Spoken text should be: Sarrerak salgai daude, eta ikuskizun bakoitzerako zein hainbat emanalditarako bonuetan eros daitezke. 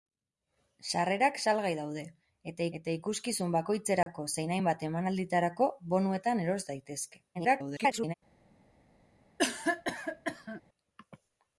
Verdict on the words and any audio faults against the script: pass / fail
fail